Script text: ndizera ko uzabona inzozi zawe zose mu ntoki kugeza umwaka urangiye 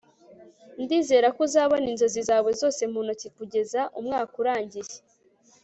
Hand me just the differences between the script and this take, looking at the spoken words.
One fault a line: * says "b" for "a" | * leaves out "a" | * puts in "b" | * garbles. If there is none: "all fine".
all fine